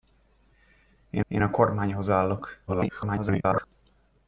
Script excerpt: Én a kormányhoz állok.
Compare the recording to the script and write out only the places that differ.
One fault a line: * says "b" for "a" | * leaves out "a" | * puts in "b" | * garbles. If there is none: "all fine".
* puts in "én"
* garbles